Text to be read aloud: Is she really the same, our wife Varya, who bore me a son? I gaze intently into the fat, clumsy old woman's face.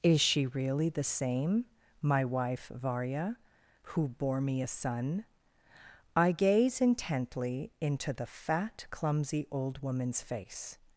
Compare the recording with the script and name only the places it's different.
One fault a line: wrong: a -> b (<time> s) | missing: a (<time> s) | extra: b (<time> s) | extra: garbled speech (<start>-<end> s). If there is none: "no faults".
wrong: our -> my (2.0 s)